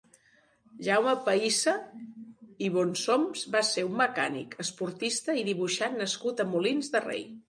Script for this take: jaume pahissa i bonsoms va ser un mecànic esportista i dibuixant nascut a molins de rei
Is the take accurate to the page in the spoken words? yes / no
yes